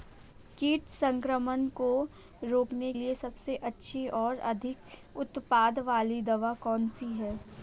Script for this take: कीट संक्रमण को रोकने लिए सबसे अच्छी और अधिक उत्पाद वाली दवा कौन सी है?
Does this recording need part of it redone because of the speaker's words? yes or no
no